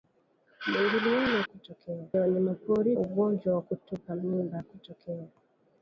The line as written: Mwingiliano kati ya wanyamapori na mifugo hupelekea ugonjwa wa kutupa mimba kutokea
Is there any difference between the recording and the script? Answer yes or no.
yes